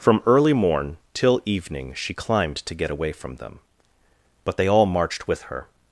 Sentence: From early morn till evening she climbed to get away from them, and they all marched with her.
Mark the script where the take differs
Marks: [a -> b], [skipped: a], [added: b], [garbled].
From early morn till evening she climbed to get away from them, [and -> but] they all marched with her.